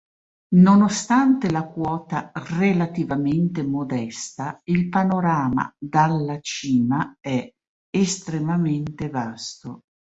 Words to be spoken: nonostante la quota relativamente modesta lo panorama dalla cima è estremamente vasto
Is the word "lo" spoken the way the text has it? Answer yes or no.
no